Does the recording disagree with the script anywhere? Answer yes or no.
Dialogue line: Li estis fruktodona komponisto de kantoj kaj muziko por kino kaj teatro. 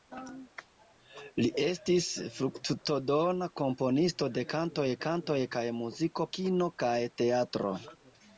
yes